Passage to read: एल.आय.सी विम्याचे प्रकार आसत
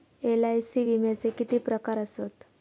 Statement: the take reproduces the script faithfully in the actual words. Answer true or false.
false